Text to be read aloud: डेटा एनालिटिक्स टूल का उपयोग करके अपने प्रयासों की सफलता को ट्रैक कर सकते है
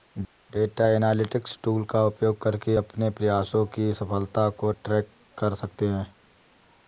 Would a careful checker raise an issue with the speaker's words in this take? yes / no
no